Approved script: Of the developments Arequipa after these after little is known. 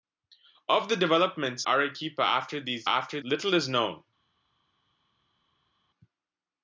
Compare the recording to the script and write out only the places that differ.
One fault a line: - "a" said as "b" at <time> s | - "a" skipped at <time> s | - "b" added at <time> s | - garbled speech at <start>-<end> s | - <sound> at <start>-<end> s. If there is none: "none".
none